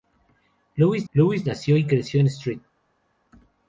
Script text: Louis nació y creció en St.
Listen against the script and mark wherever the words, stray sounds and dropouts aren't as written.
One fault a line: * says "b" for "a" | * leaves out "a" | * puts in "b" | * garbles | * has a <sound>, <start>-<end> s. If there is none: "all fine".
* puts in "louis"